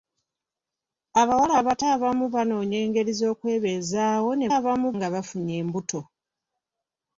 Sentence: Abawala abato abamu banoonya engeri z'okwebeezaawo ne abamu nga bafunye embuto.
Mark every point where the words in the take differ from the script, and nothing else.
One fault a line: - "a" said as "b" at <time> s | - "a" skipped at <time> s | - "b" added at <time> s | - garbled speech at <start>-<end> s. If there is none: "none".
none